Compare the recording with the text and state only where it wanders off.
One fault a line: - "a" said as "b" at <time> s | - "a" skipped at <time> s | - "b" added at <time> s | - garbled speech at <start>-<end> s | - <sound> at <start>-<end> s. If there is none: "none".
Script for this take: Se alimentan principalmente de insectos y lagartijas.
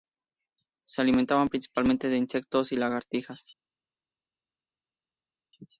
none